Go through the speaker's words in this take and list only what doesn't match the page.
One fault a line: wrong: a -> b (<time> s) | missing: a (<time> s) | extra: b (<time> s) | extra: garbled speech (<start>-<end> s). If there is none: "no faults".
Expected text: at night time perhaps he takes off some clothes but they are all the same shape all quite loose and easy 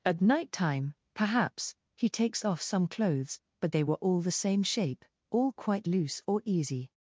wrong: are -> were (3.8 s)
wrong: and -> or (6.3 s)